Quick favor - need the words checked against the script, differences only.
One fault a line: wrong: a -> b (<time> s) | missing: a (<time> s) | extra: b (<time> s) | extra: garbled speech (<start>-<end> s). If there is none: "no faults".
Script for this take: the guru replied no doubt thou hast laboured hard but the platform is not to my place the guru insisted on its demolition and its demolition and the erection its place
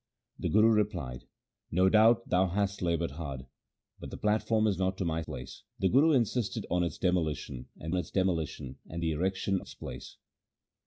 no faults